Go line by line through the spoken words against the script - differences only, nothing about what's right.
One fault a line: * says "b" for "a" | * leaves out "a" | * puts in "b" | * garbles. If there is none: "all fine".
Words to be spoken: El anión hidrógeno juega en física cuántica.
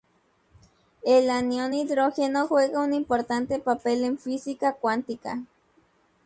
* puts in "un importante papel"